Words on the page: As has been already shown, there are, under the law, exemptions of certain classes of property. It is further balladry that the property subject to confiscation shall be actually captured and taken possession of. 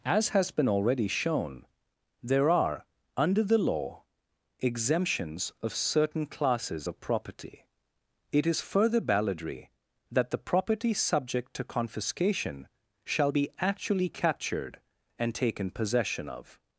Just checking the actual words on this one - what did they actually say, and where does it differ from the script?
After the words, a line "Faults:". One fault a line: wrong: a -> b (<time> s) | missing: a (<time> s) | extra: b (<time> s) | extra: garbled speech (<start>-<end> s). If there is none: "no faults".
As has been already shown, there are, under the law, exemptions of certain classes of property. It is further balladry that the property subject to confiscation shall be actually captured and taken possession of.
Faults:
no faults